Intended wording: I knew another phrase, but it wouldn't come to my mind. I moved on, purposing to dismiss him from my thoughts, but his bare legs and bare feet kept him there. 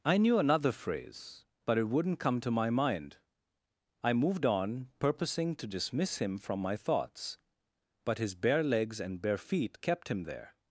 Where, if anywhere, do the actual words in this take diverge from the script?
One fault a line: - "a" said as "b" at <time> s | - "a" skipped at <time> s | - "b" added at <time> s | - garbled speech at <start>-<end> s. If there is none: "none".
none